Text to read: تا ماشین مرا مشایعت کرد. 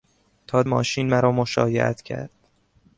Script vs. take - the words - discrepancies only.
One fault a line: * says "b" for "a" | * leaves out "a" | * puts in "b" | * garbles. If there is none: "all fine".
all fine